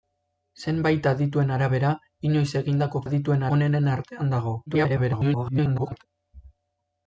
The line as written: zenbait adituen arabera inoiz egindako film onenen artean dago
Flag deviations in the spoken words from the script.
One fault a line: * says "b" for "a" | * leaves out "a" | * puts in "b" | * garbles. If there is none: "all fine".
* says "adituen" for "film"
* garbles